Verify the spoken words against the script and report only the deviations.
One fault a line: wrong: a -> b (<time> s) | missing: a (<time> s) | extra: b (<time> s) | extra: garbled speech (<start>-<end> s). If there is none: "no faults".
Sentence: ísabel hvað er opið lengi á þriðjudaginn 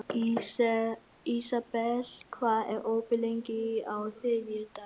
no faults